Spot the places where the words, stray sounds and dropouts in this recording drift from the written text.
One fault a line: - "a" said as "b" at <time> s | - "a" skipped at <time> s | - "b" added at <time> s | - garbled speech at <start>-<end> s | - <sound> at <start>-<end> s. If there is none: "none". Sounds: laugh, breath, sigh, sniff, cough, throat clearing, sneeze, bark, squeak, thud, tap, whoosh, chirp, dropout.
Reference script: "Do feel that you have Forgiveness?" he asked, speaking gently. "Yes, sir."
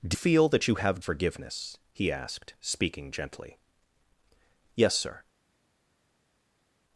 none